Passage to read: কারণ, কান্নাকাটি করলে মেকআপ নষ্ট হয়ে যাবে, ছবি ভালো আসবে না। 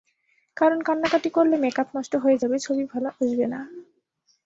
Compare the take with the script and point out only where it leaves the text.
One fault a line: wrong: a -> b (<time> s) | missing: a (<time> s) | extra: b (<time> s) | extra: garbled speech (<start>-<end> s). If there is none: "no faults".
no faults